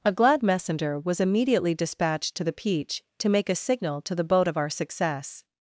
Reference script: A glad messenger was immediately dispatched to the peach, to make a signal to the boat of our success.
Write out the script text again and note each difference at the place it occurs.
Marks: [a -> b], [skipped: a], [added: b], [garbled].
A glad messenger was immediately dispatched to the peach, to make a signal to the boat of our success.